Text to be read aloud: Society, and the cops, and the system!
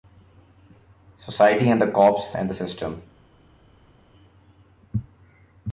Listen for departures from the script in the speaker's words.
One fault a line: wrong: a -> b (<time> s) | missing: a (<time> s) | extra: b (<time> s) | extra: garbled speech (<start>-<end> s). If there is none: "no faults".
no faults